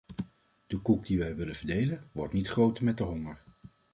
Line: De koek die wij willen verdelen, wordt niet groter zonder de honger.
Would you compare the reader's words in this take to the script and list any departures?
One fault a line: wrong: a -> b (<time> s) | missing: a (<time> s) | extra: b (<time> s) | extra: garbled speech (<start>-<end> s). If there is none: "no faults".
wrong: zonder -> met (2.8 s)